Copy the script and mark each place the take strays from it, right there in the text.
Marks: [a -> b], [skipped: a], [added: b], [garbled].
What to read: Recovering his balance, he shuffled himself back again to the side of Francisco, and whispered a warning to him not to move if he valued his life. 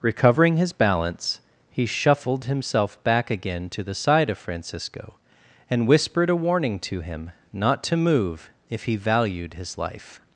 Recovering his balance, he shuffled himself back again to the side of Francisco, and whispered a warning to him not to move if he valued his life.